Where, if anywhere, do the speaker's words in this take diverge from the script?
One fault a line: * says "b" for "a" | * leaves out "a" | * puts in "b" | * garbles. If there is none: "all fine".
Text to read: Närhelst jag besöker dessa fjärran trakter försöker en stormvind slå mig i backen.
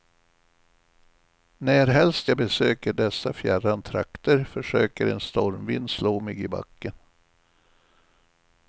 all fine